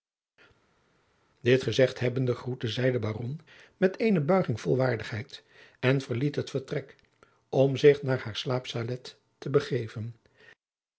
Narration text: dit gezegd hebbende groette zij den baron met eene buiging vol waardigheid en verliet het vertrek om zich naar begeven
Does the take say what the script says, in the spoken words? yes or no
no